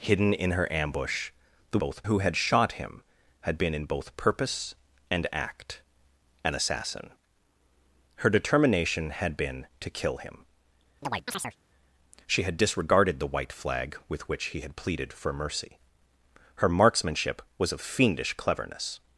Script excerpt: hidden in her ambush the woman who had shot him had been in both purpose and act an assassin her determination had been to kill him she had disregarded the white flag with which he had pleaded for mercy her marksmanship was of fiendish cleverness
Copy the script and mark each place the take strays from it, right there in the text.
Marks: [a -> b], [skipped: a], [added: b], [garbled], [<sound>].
hidden in her ambush the [woman -> both] who had shot him had been in both purpose and act an assassin her determination had been to kill him [chirp] she had disregarded the white flag with which he had pleaded for mercy her marksmanship was of fiendish cleverness